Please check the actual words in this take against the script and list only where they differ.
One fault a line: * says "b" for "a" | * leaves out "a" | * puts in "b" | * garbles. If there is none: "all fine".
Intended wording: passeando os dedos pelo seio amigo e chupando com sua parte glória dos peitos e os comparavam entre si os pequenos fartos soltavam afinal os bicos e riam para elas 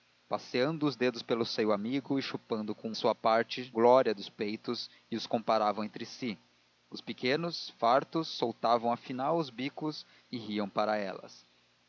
all fine